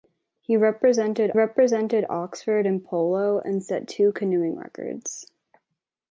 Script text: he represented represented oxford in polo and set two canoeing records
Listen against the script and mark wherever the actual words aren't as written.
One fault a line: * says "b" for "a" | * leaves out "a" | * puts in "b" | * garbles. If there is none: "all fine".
all fine